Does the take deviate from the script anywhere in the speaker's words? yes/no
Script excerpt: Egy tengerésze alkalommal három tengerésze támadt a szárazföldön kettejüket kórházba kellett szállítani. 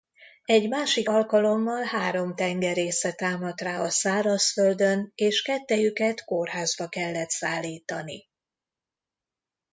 yes